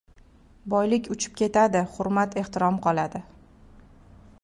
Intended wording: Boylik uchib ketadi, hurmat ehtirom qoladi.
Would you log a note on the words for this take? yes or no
no